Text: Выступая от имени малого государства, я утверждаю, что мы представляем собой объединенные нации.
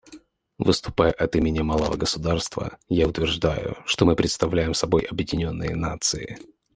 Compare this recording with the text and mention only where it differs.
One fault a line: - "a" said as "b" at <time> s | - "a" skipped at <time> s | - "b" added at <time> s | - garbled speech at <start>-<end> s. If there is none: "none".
none